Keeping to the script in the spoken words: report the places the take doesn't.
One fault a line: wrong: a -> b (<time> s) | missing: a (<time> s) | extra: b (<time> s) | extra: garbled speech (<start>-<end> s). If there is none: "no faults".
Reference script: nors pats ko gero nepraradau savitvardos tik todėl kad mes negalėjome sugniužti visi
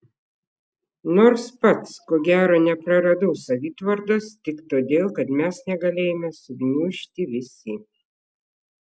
no faults